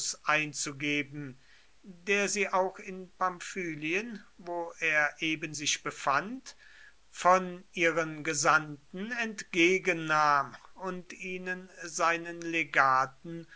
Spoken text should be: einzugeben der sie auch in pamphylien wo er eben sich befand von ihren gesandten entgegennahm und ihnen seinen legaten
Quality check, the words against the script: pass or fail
pass